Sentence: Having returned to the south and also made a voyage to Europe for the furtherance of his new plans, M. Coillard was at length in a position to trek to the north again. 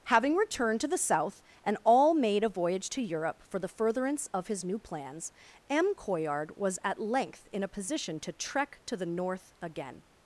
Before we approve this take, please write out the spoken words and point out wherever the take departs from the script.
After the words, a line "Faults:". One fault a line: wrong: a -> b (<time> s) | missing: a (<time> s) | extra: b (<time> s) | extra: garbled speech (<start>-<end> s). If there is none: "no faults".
Having returned to the south and all made a voyage to Europe for the furtherance of his new plans, M. Coillard was at length in a position to trek to the north again.
Faults:
wrong: also -> all (1.8 s)